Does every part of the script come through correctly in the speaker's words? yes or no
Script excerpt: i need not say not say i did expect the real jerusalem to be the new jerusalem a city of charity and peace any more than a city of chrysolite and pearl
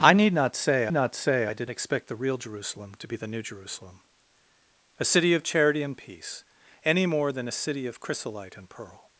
yes